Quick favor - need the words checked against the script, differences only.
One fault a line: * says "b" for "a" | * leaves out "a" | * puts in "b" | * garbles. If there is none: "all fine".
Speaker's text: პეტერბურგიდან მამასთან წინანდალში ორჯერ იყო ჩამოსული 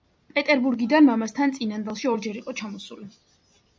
all fine